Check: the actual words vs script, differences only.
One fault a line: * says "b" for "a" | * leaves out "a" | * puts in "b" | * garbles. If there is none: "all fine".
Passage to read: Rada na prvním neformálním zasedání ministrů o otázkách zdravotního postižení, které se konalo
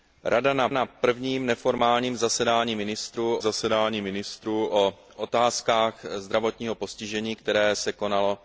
* puts in "na"
* puts in "zasedání ministrů"